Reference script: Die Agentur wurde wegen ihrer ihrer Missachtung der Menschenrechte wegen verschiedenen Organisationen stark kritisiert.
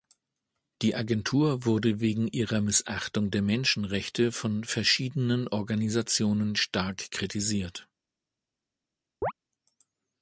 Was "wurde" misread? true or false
false